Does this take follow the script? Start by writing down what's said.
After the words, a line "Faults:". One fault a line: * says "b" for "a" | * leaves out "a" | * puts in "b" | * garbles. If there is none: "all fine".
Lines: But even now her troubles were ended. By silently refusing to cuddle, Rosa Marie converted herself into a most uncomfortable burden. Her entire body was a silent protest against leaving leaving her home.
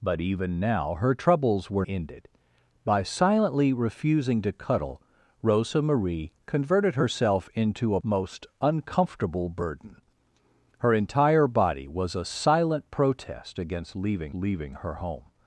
But even now her troubles were ended. By silently refusing to cuddle, Rosa Marie converted herself into a most uncomfortable burden. Her entire body was a silent protest against leaving leaving her home.
Faults:
all fine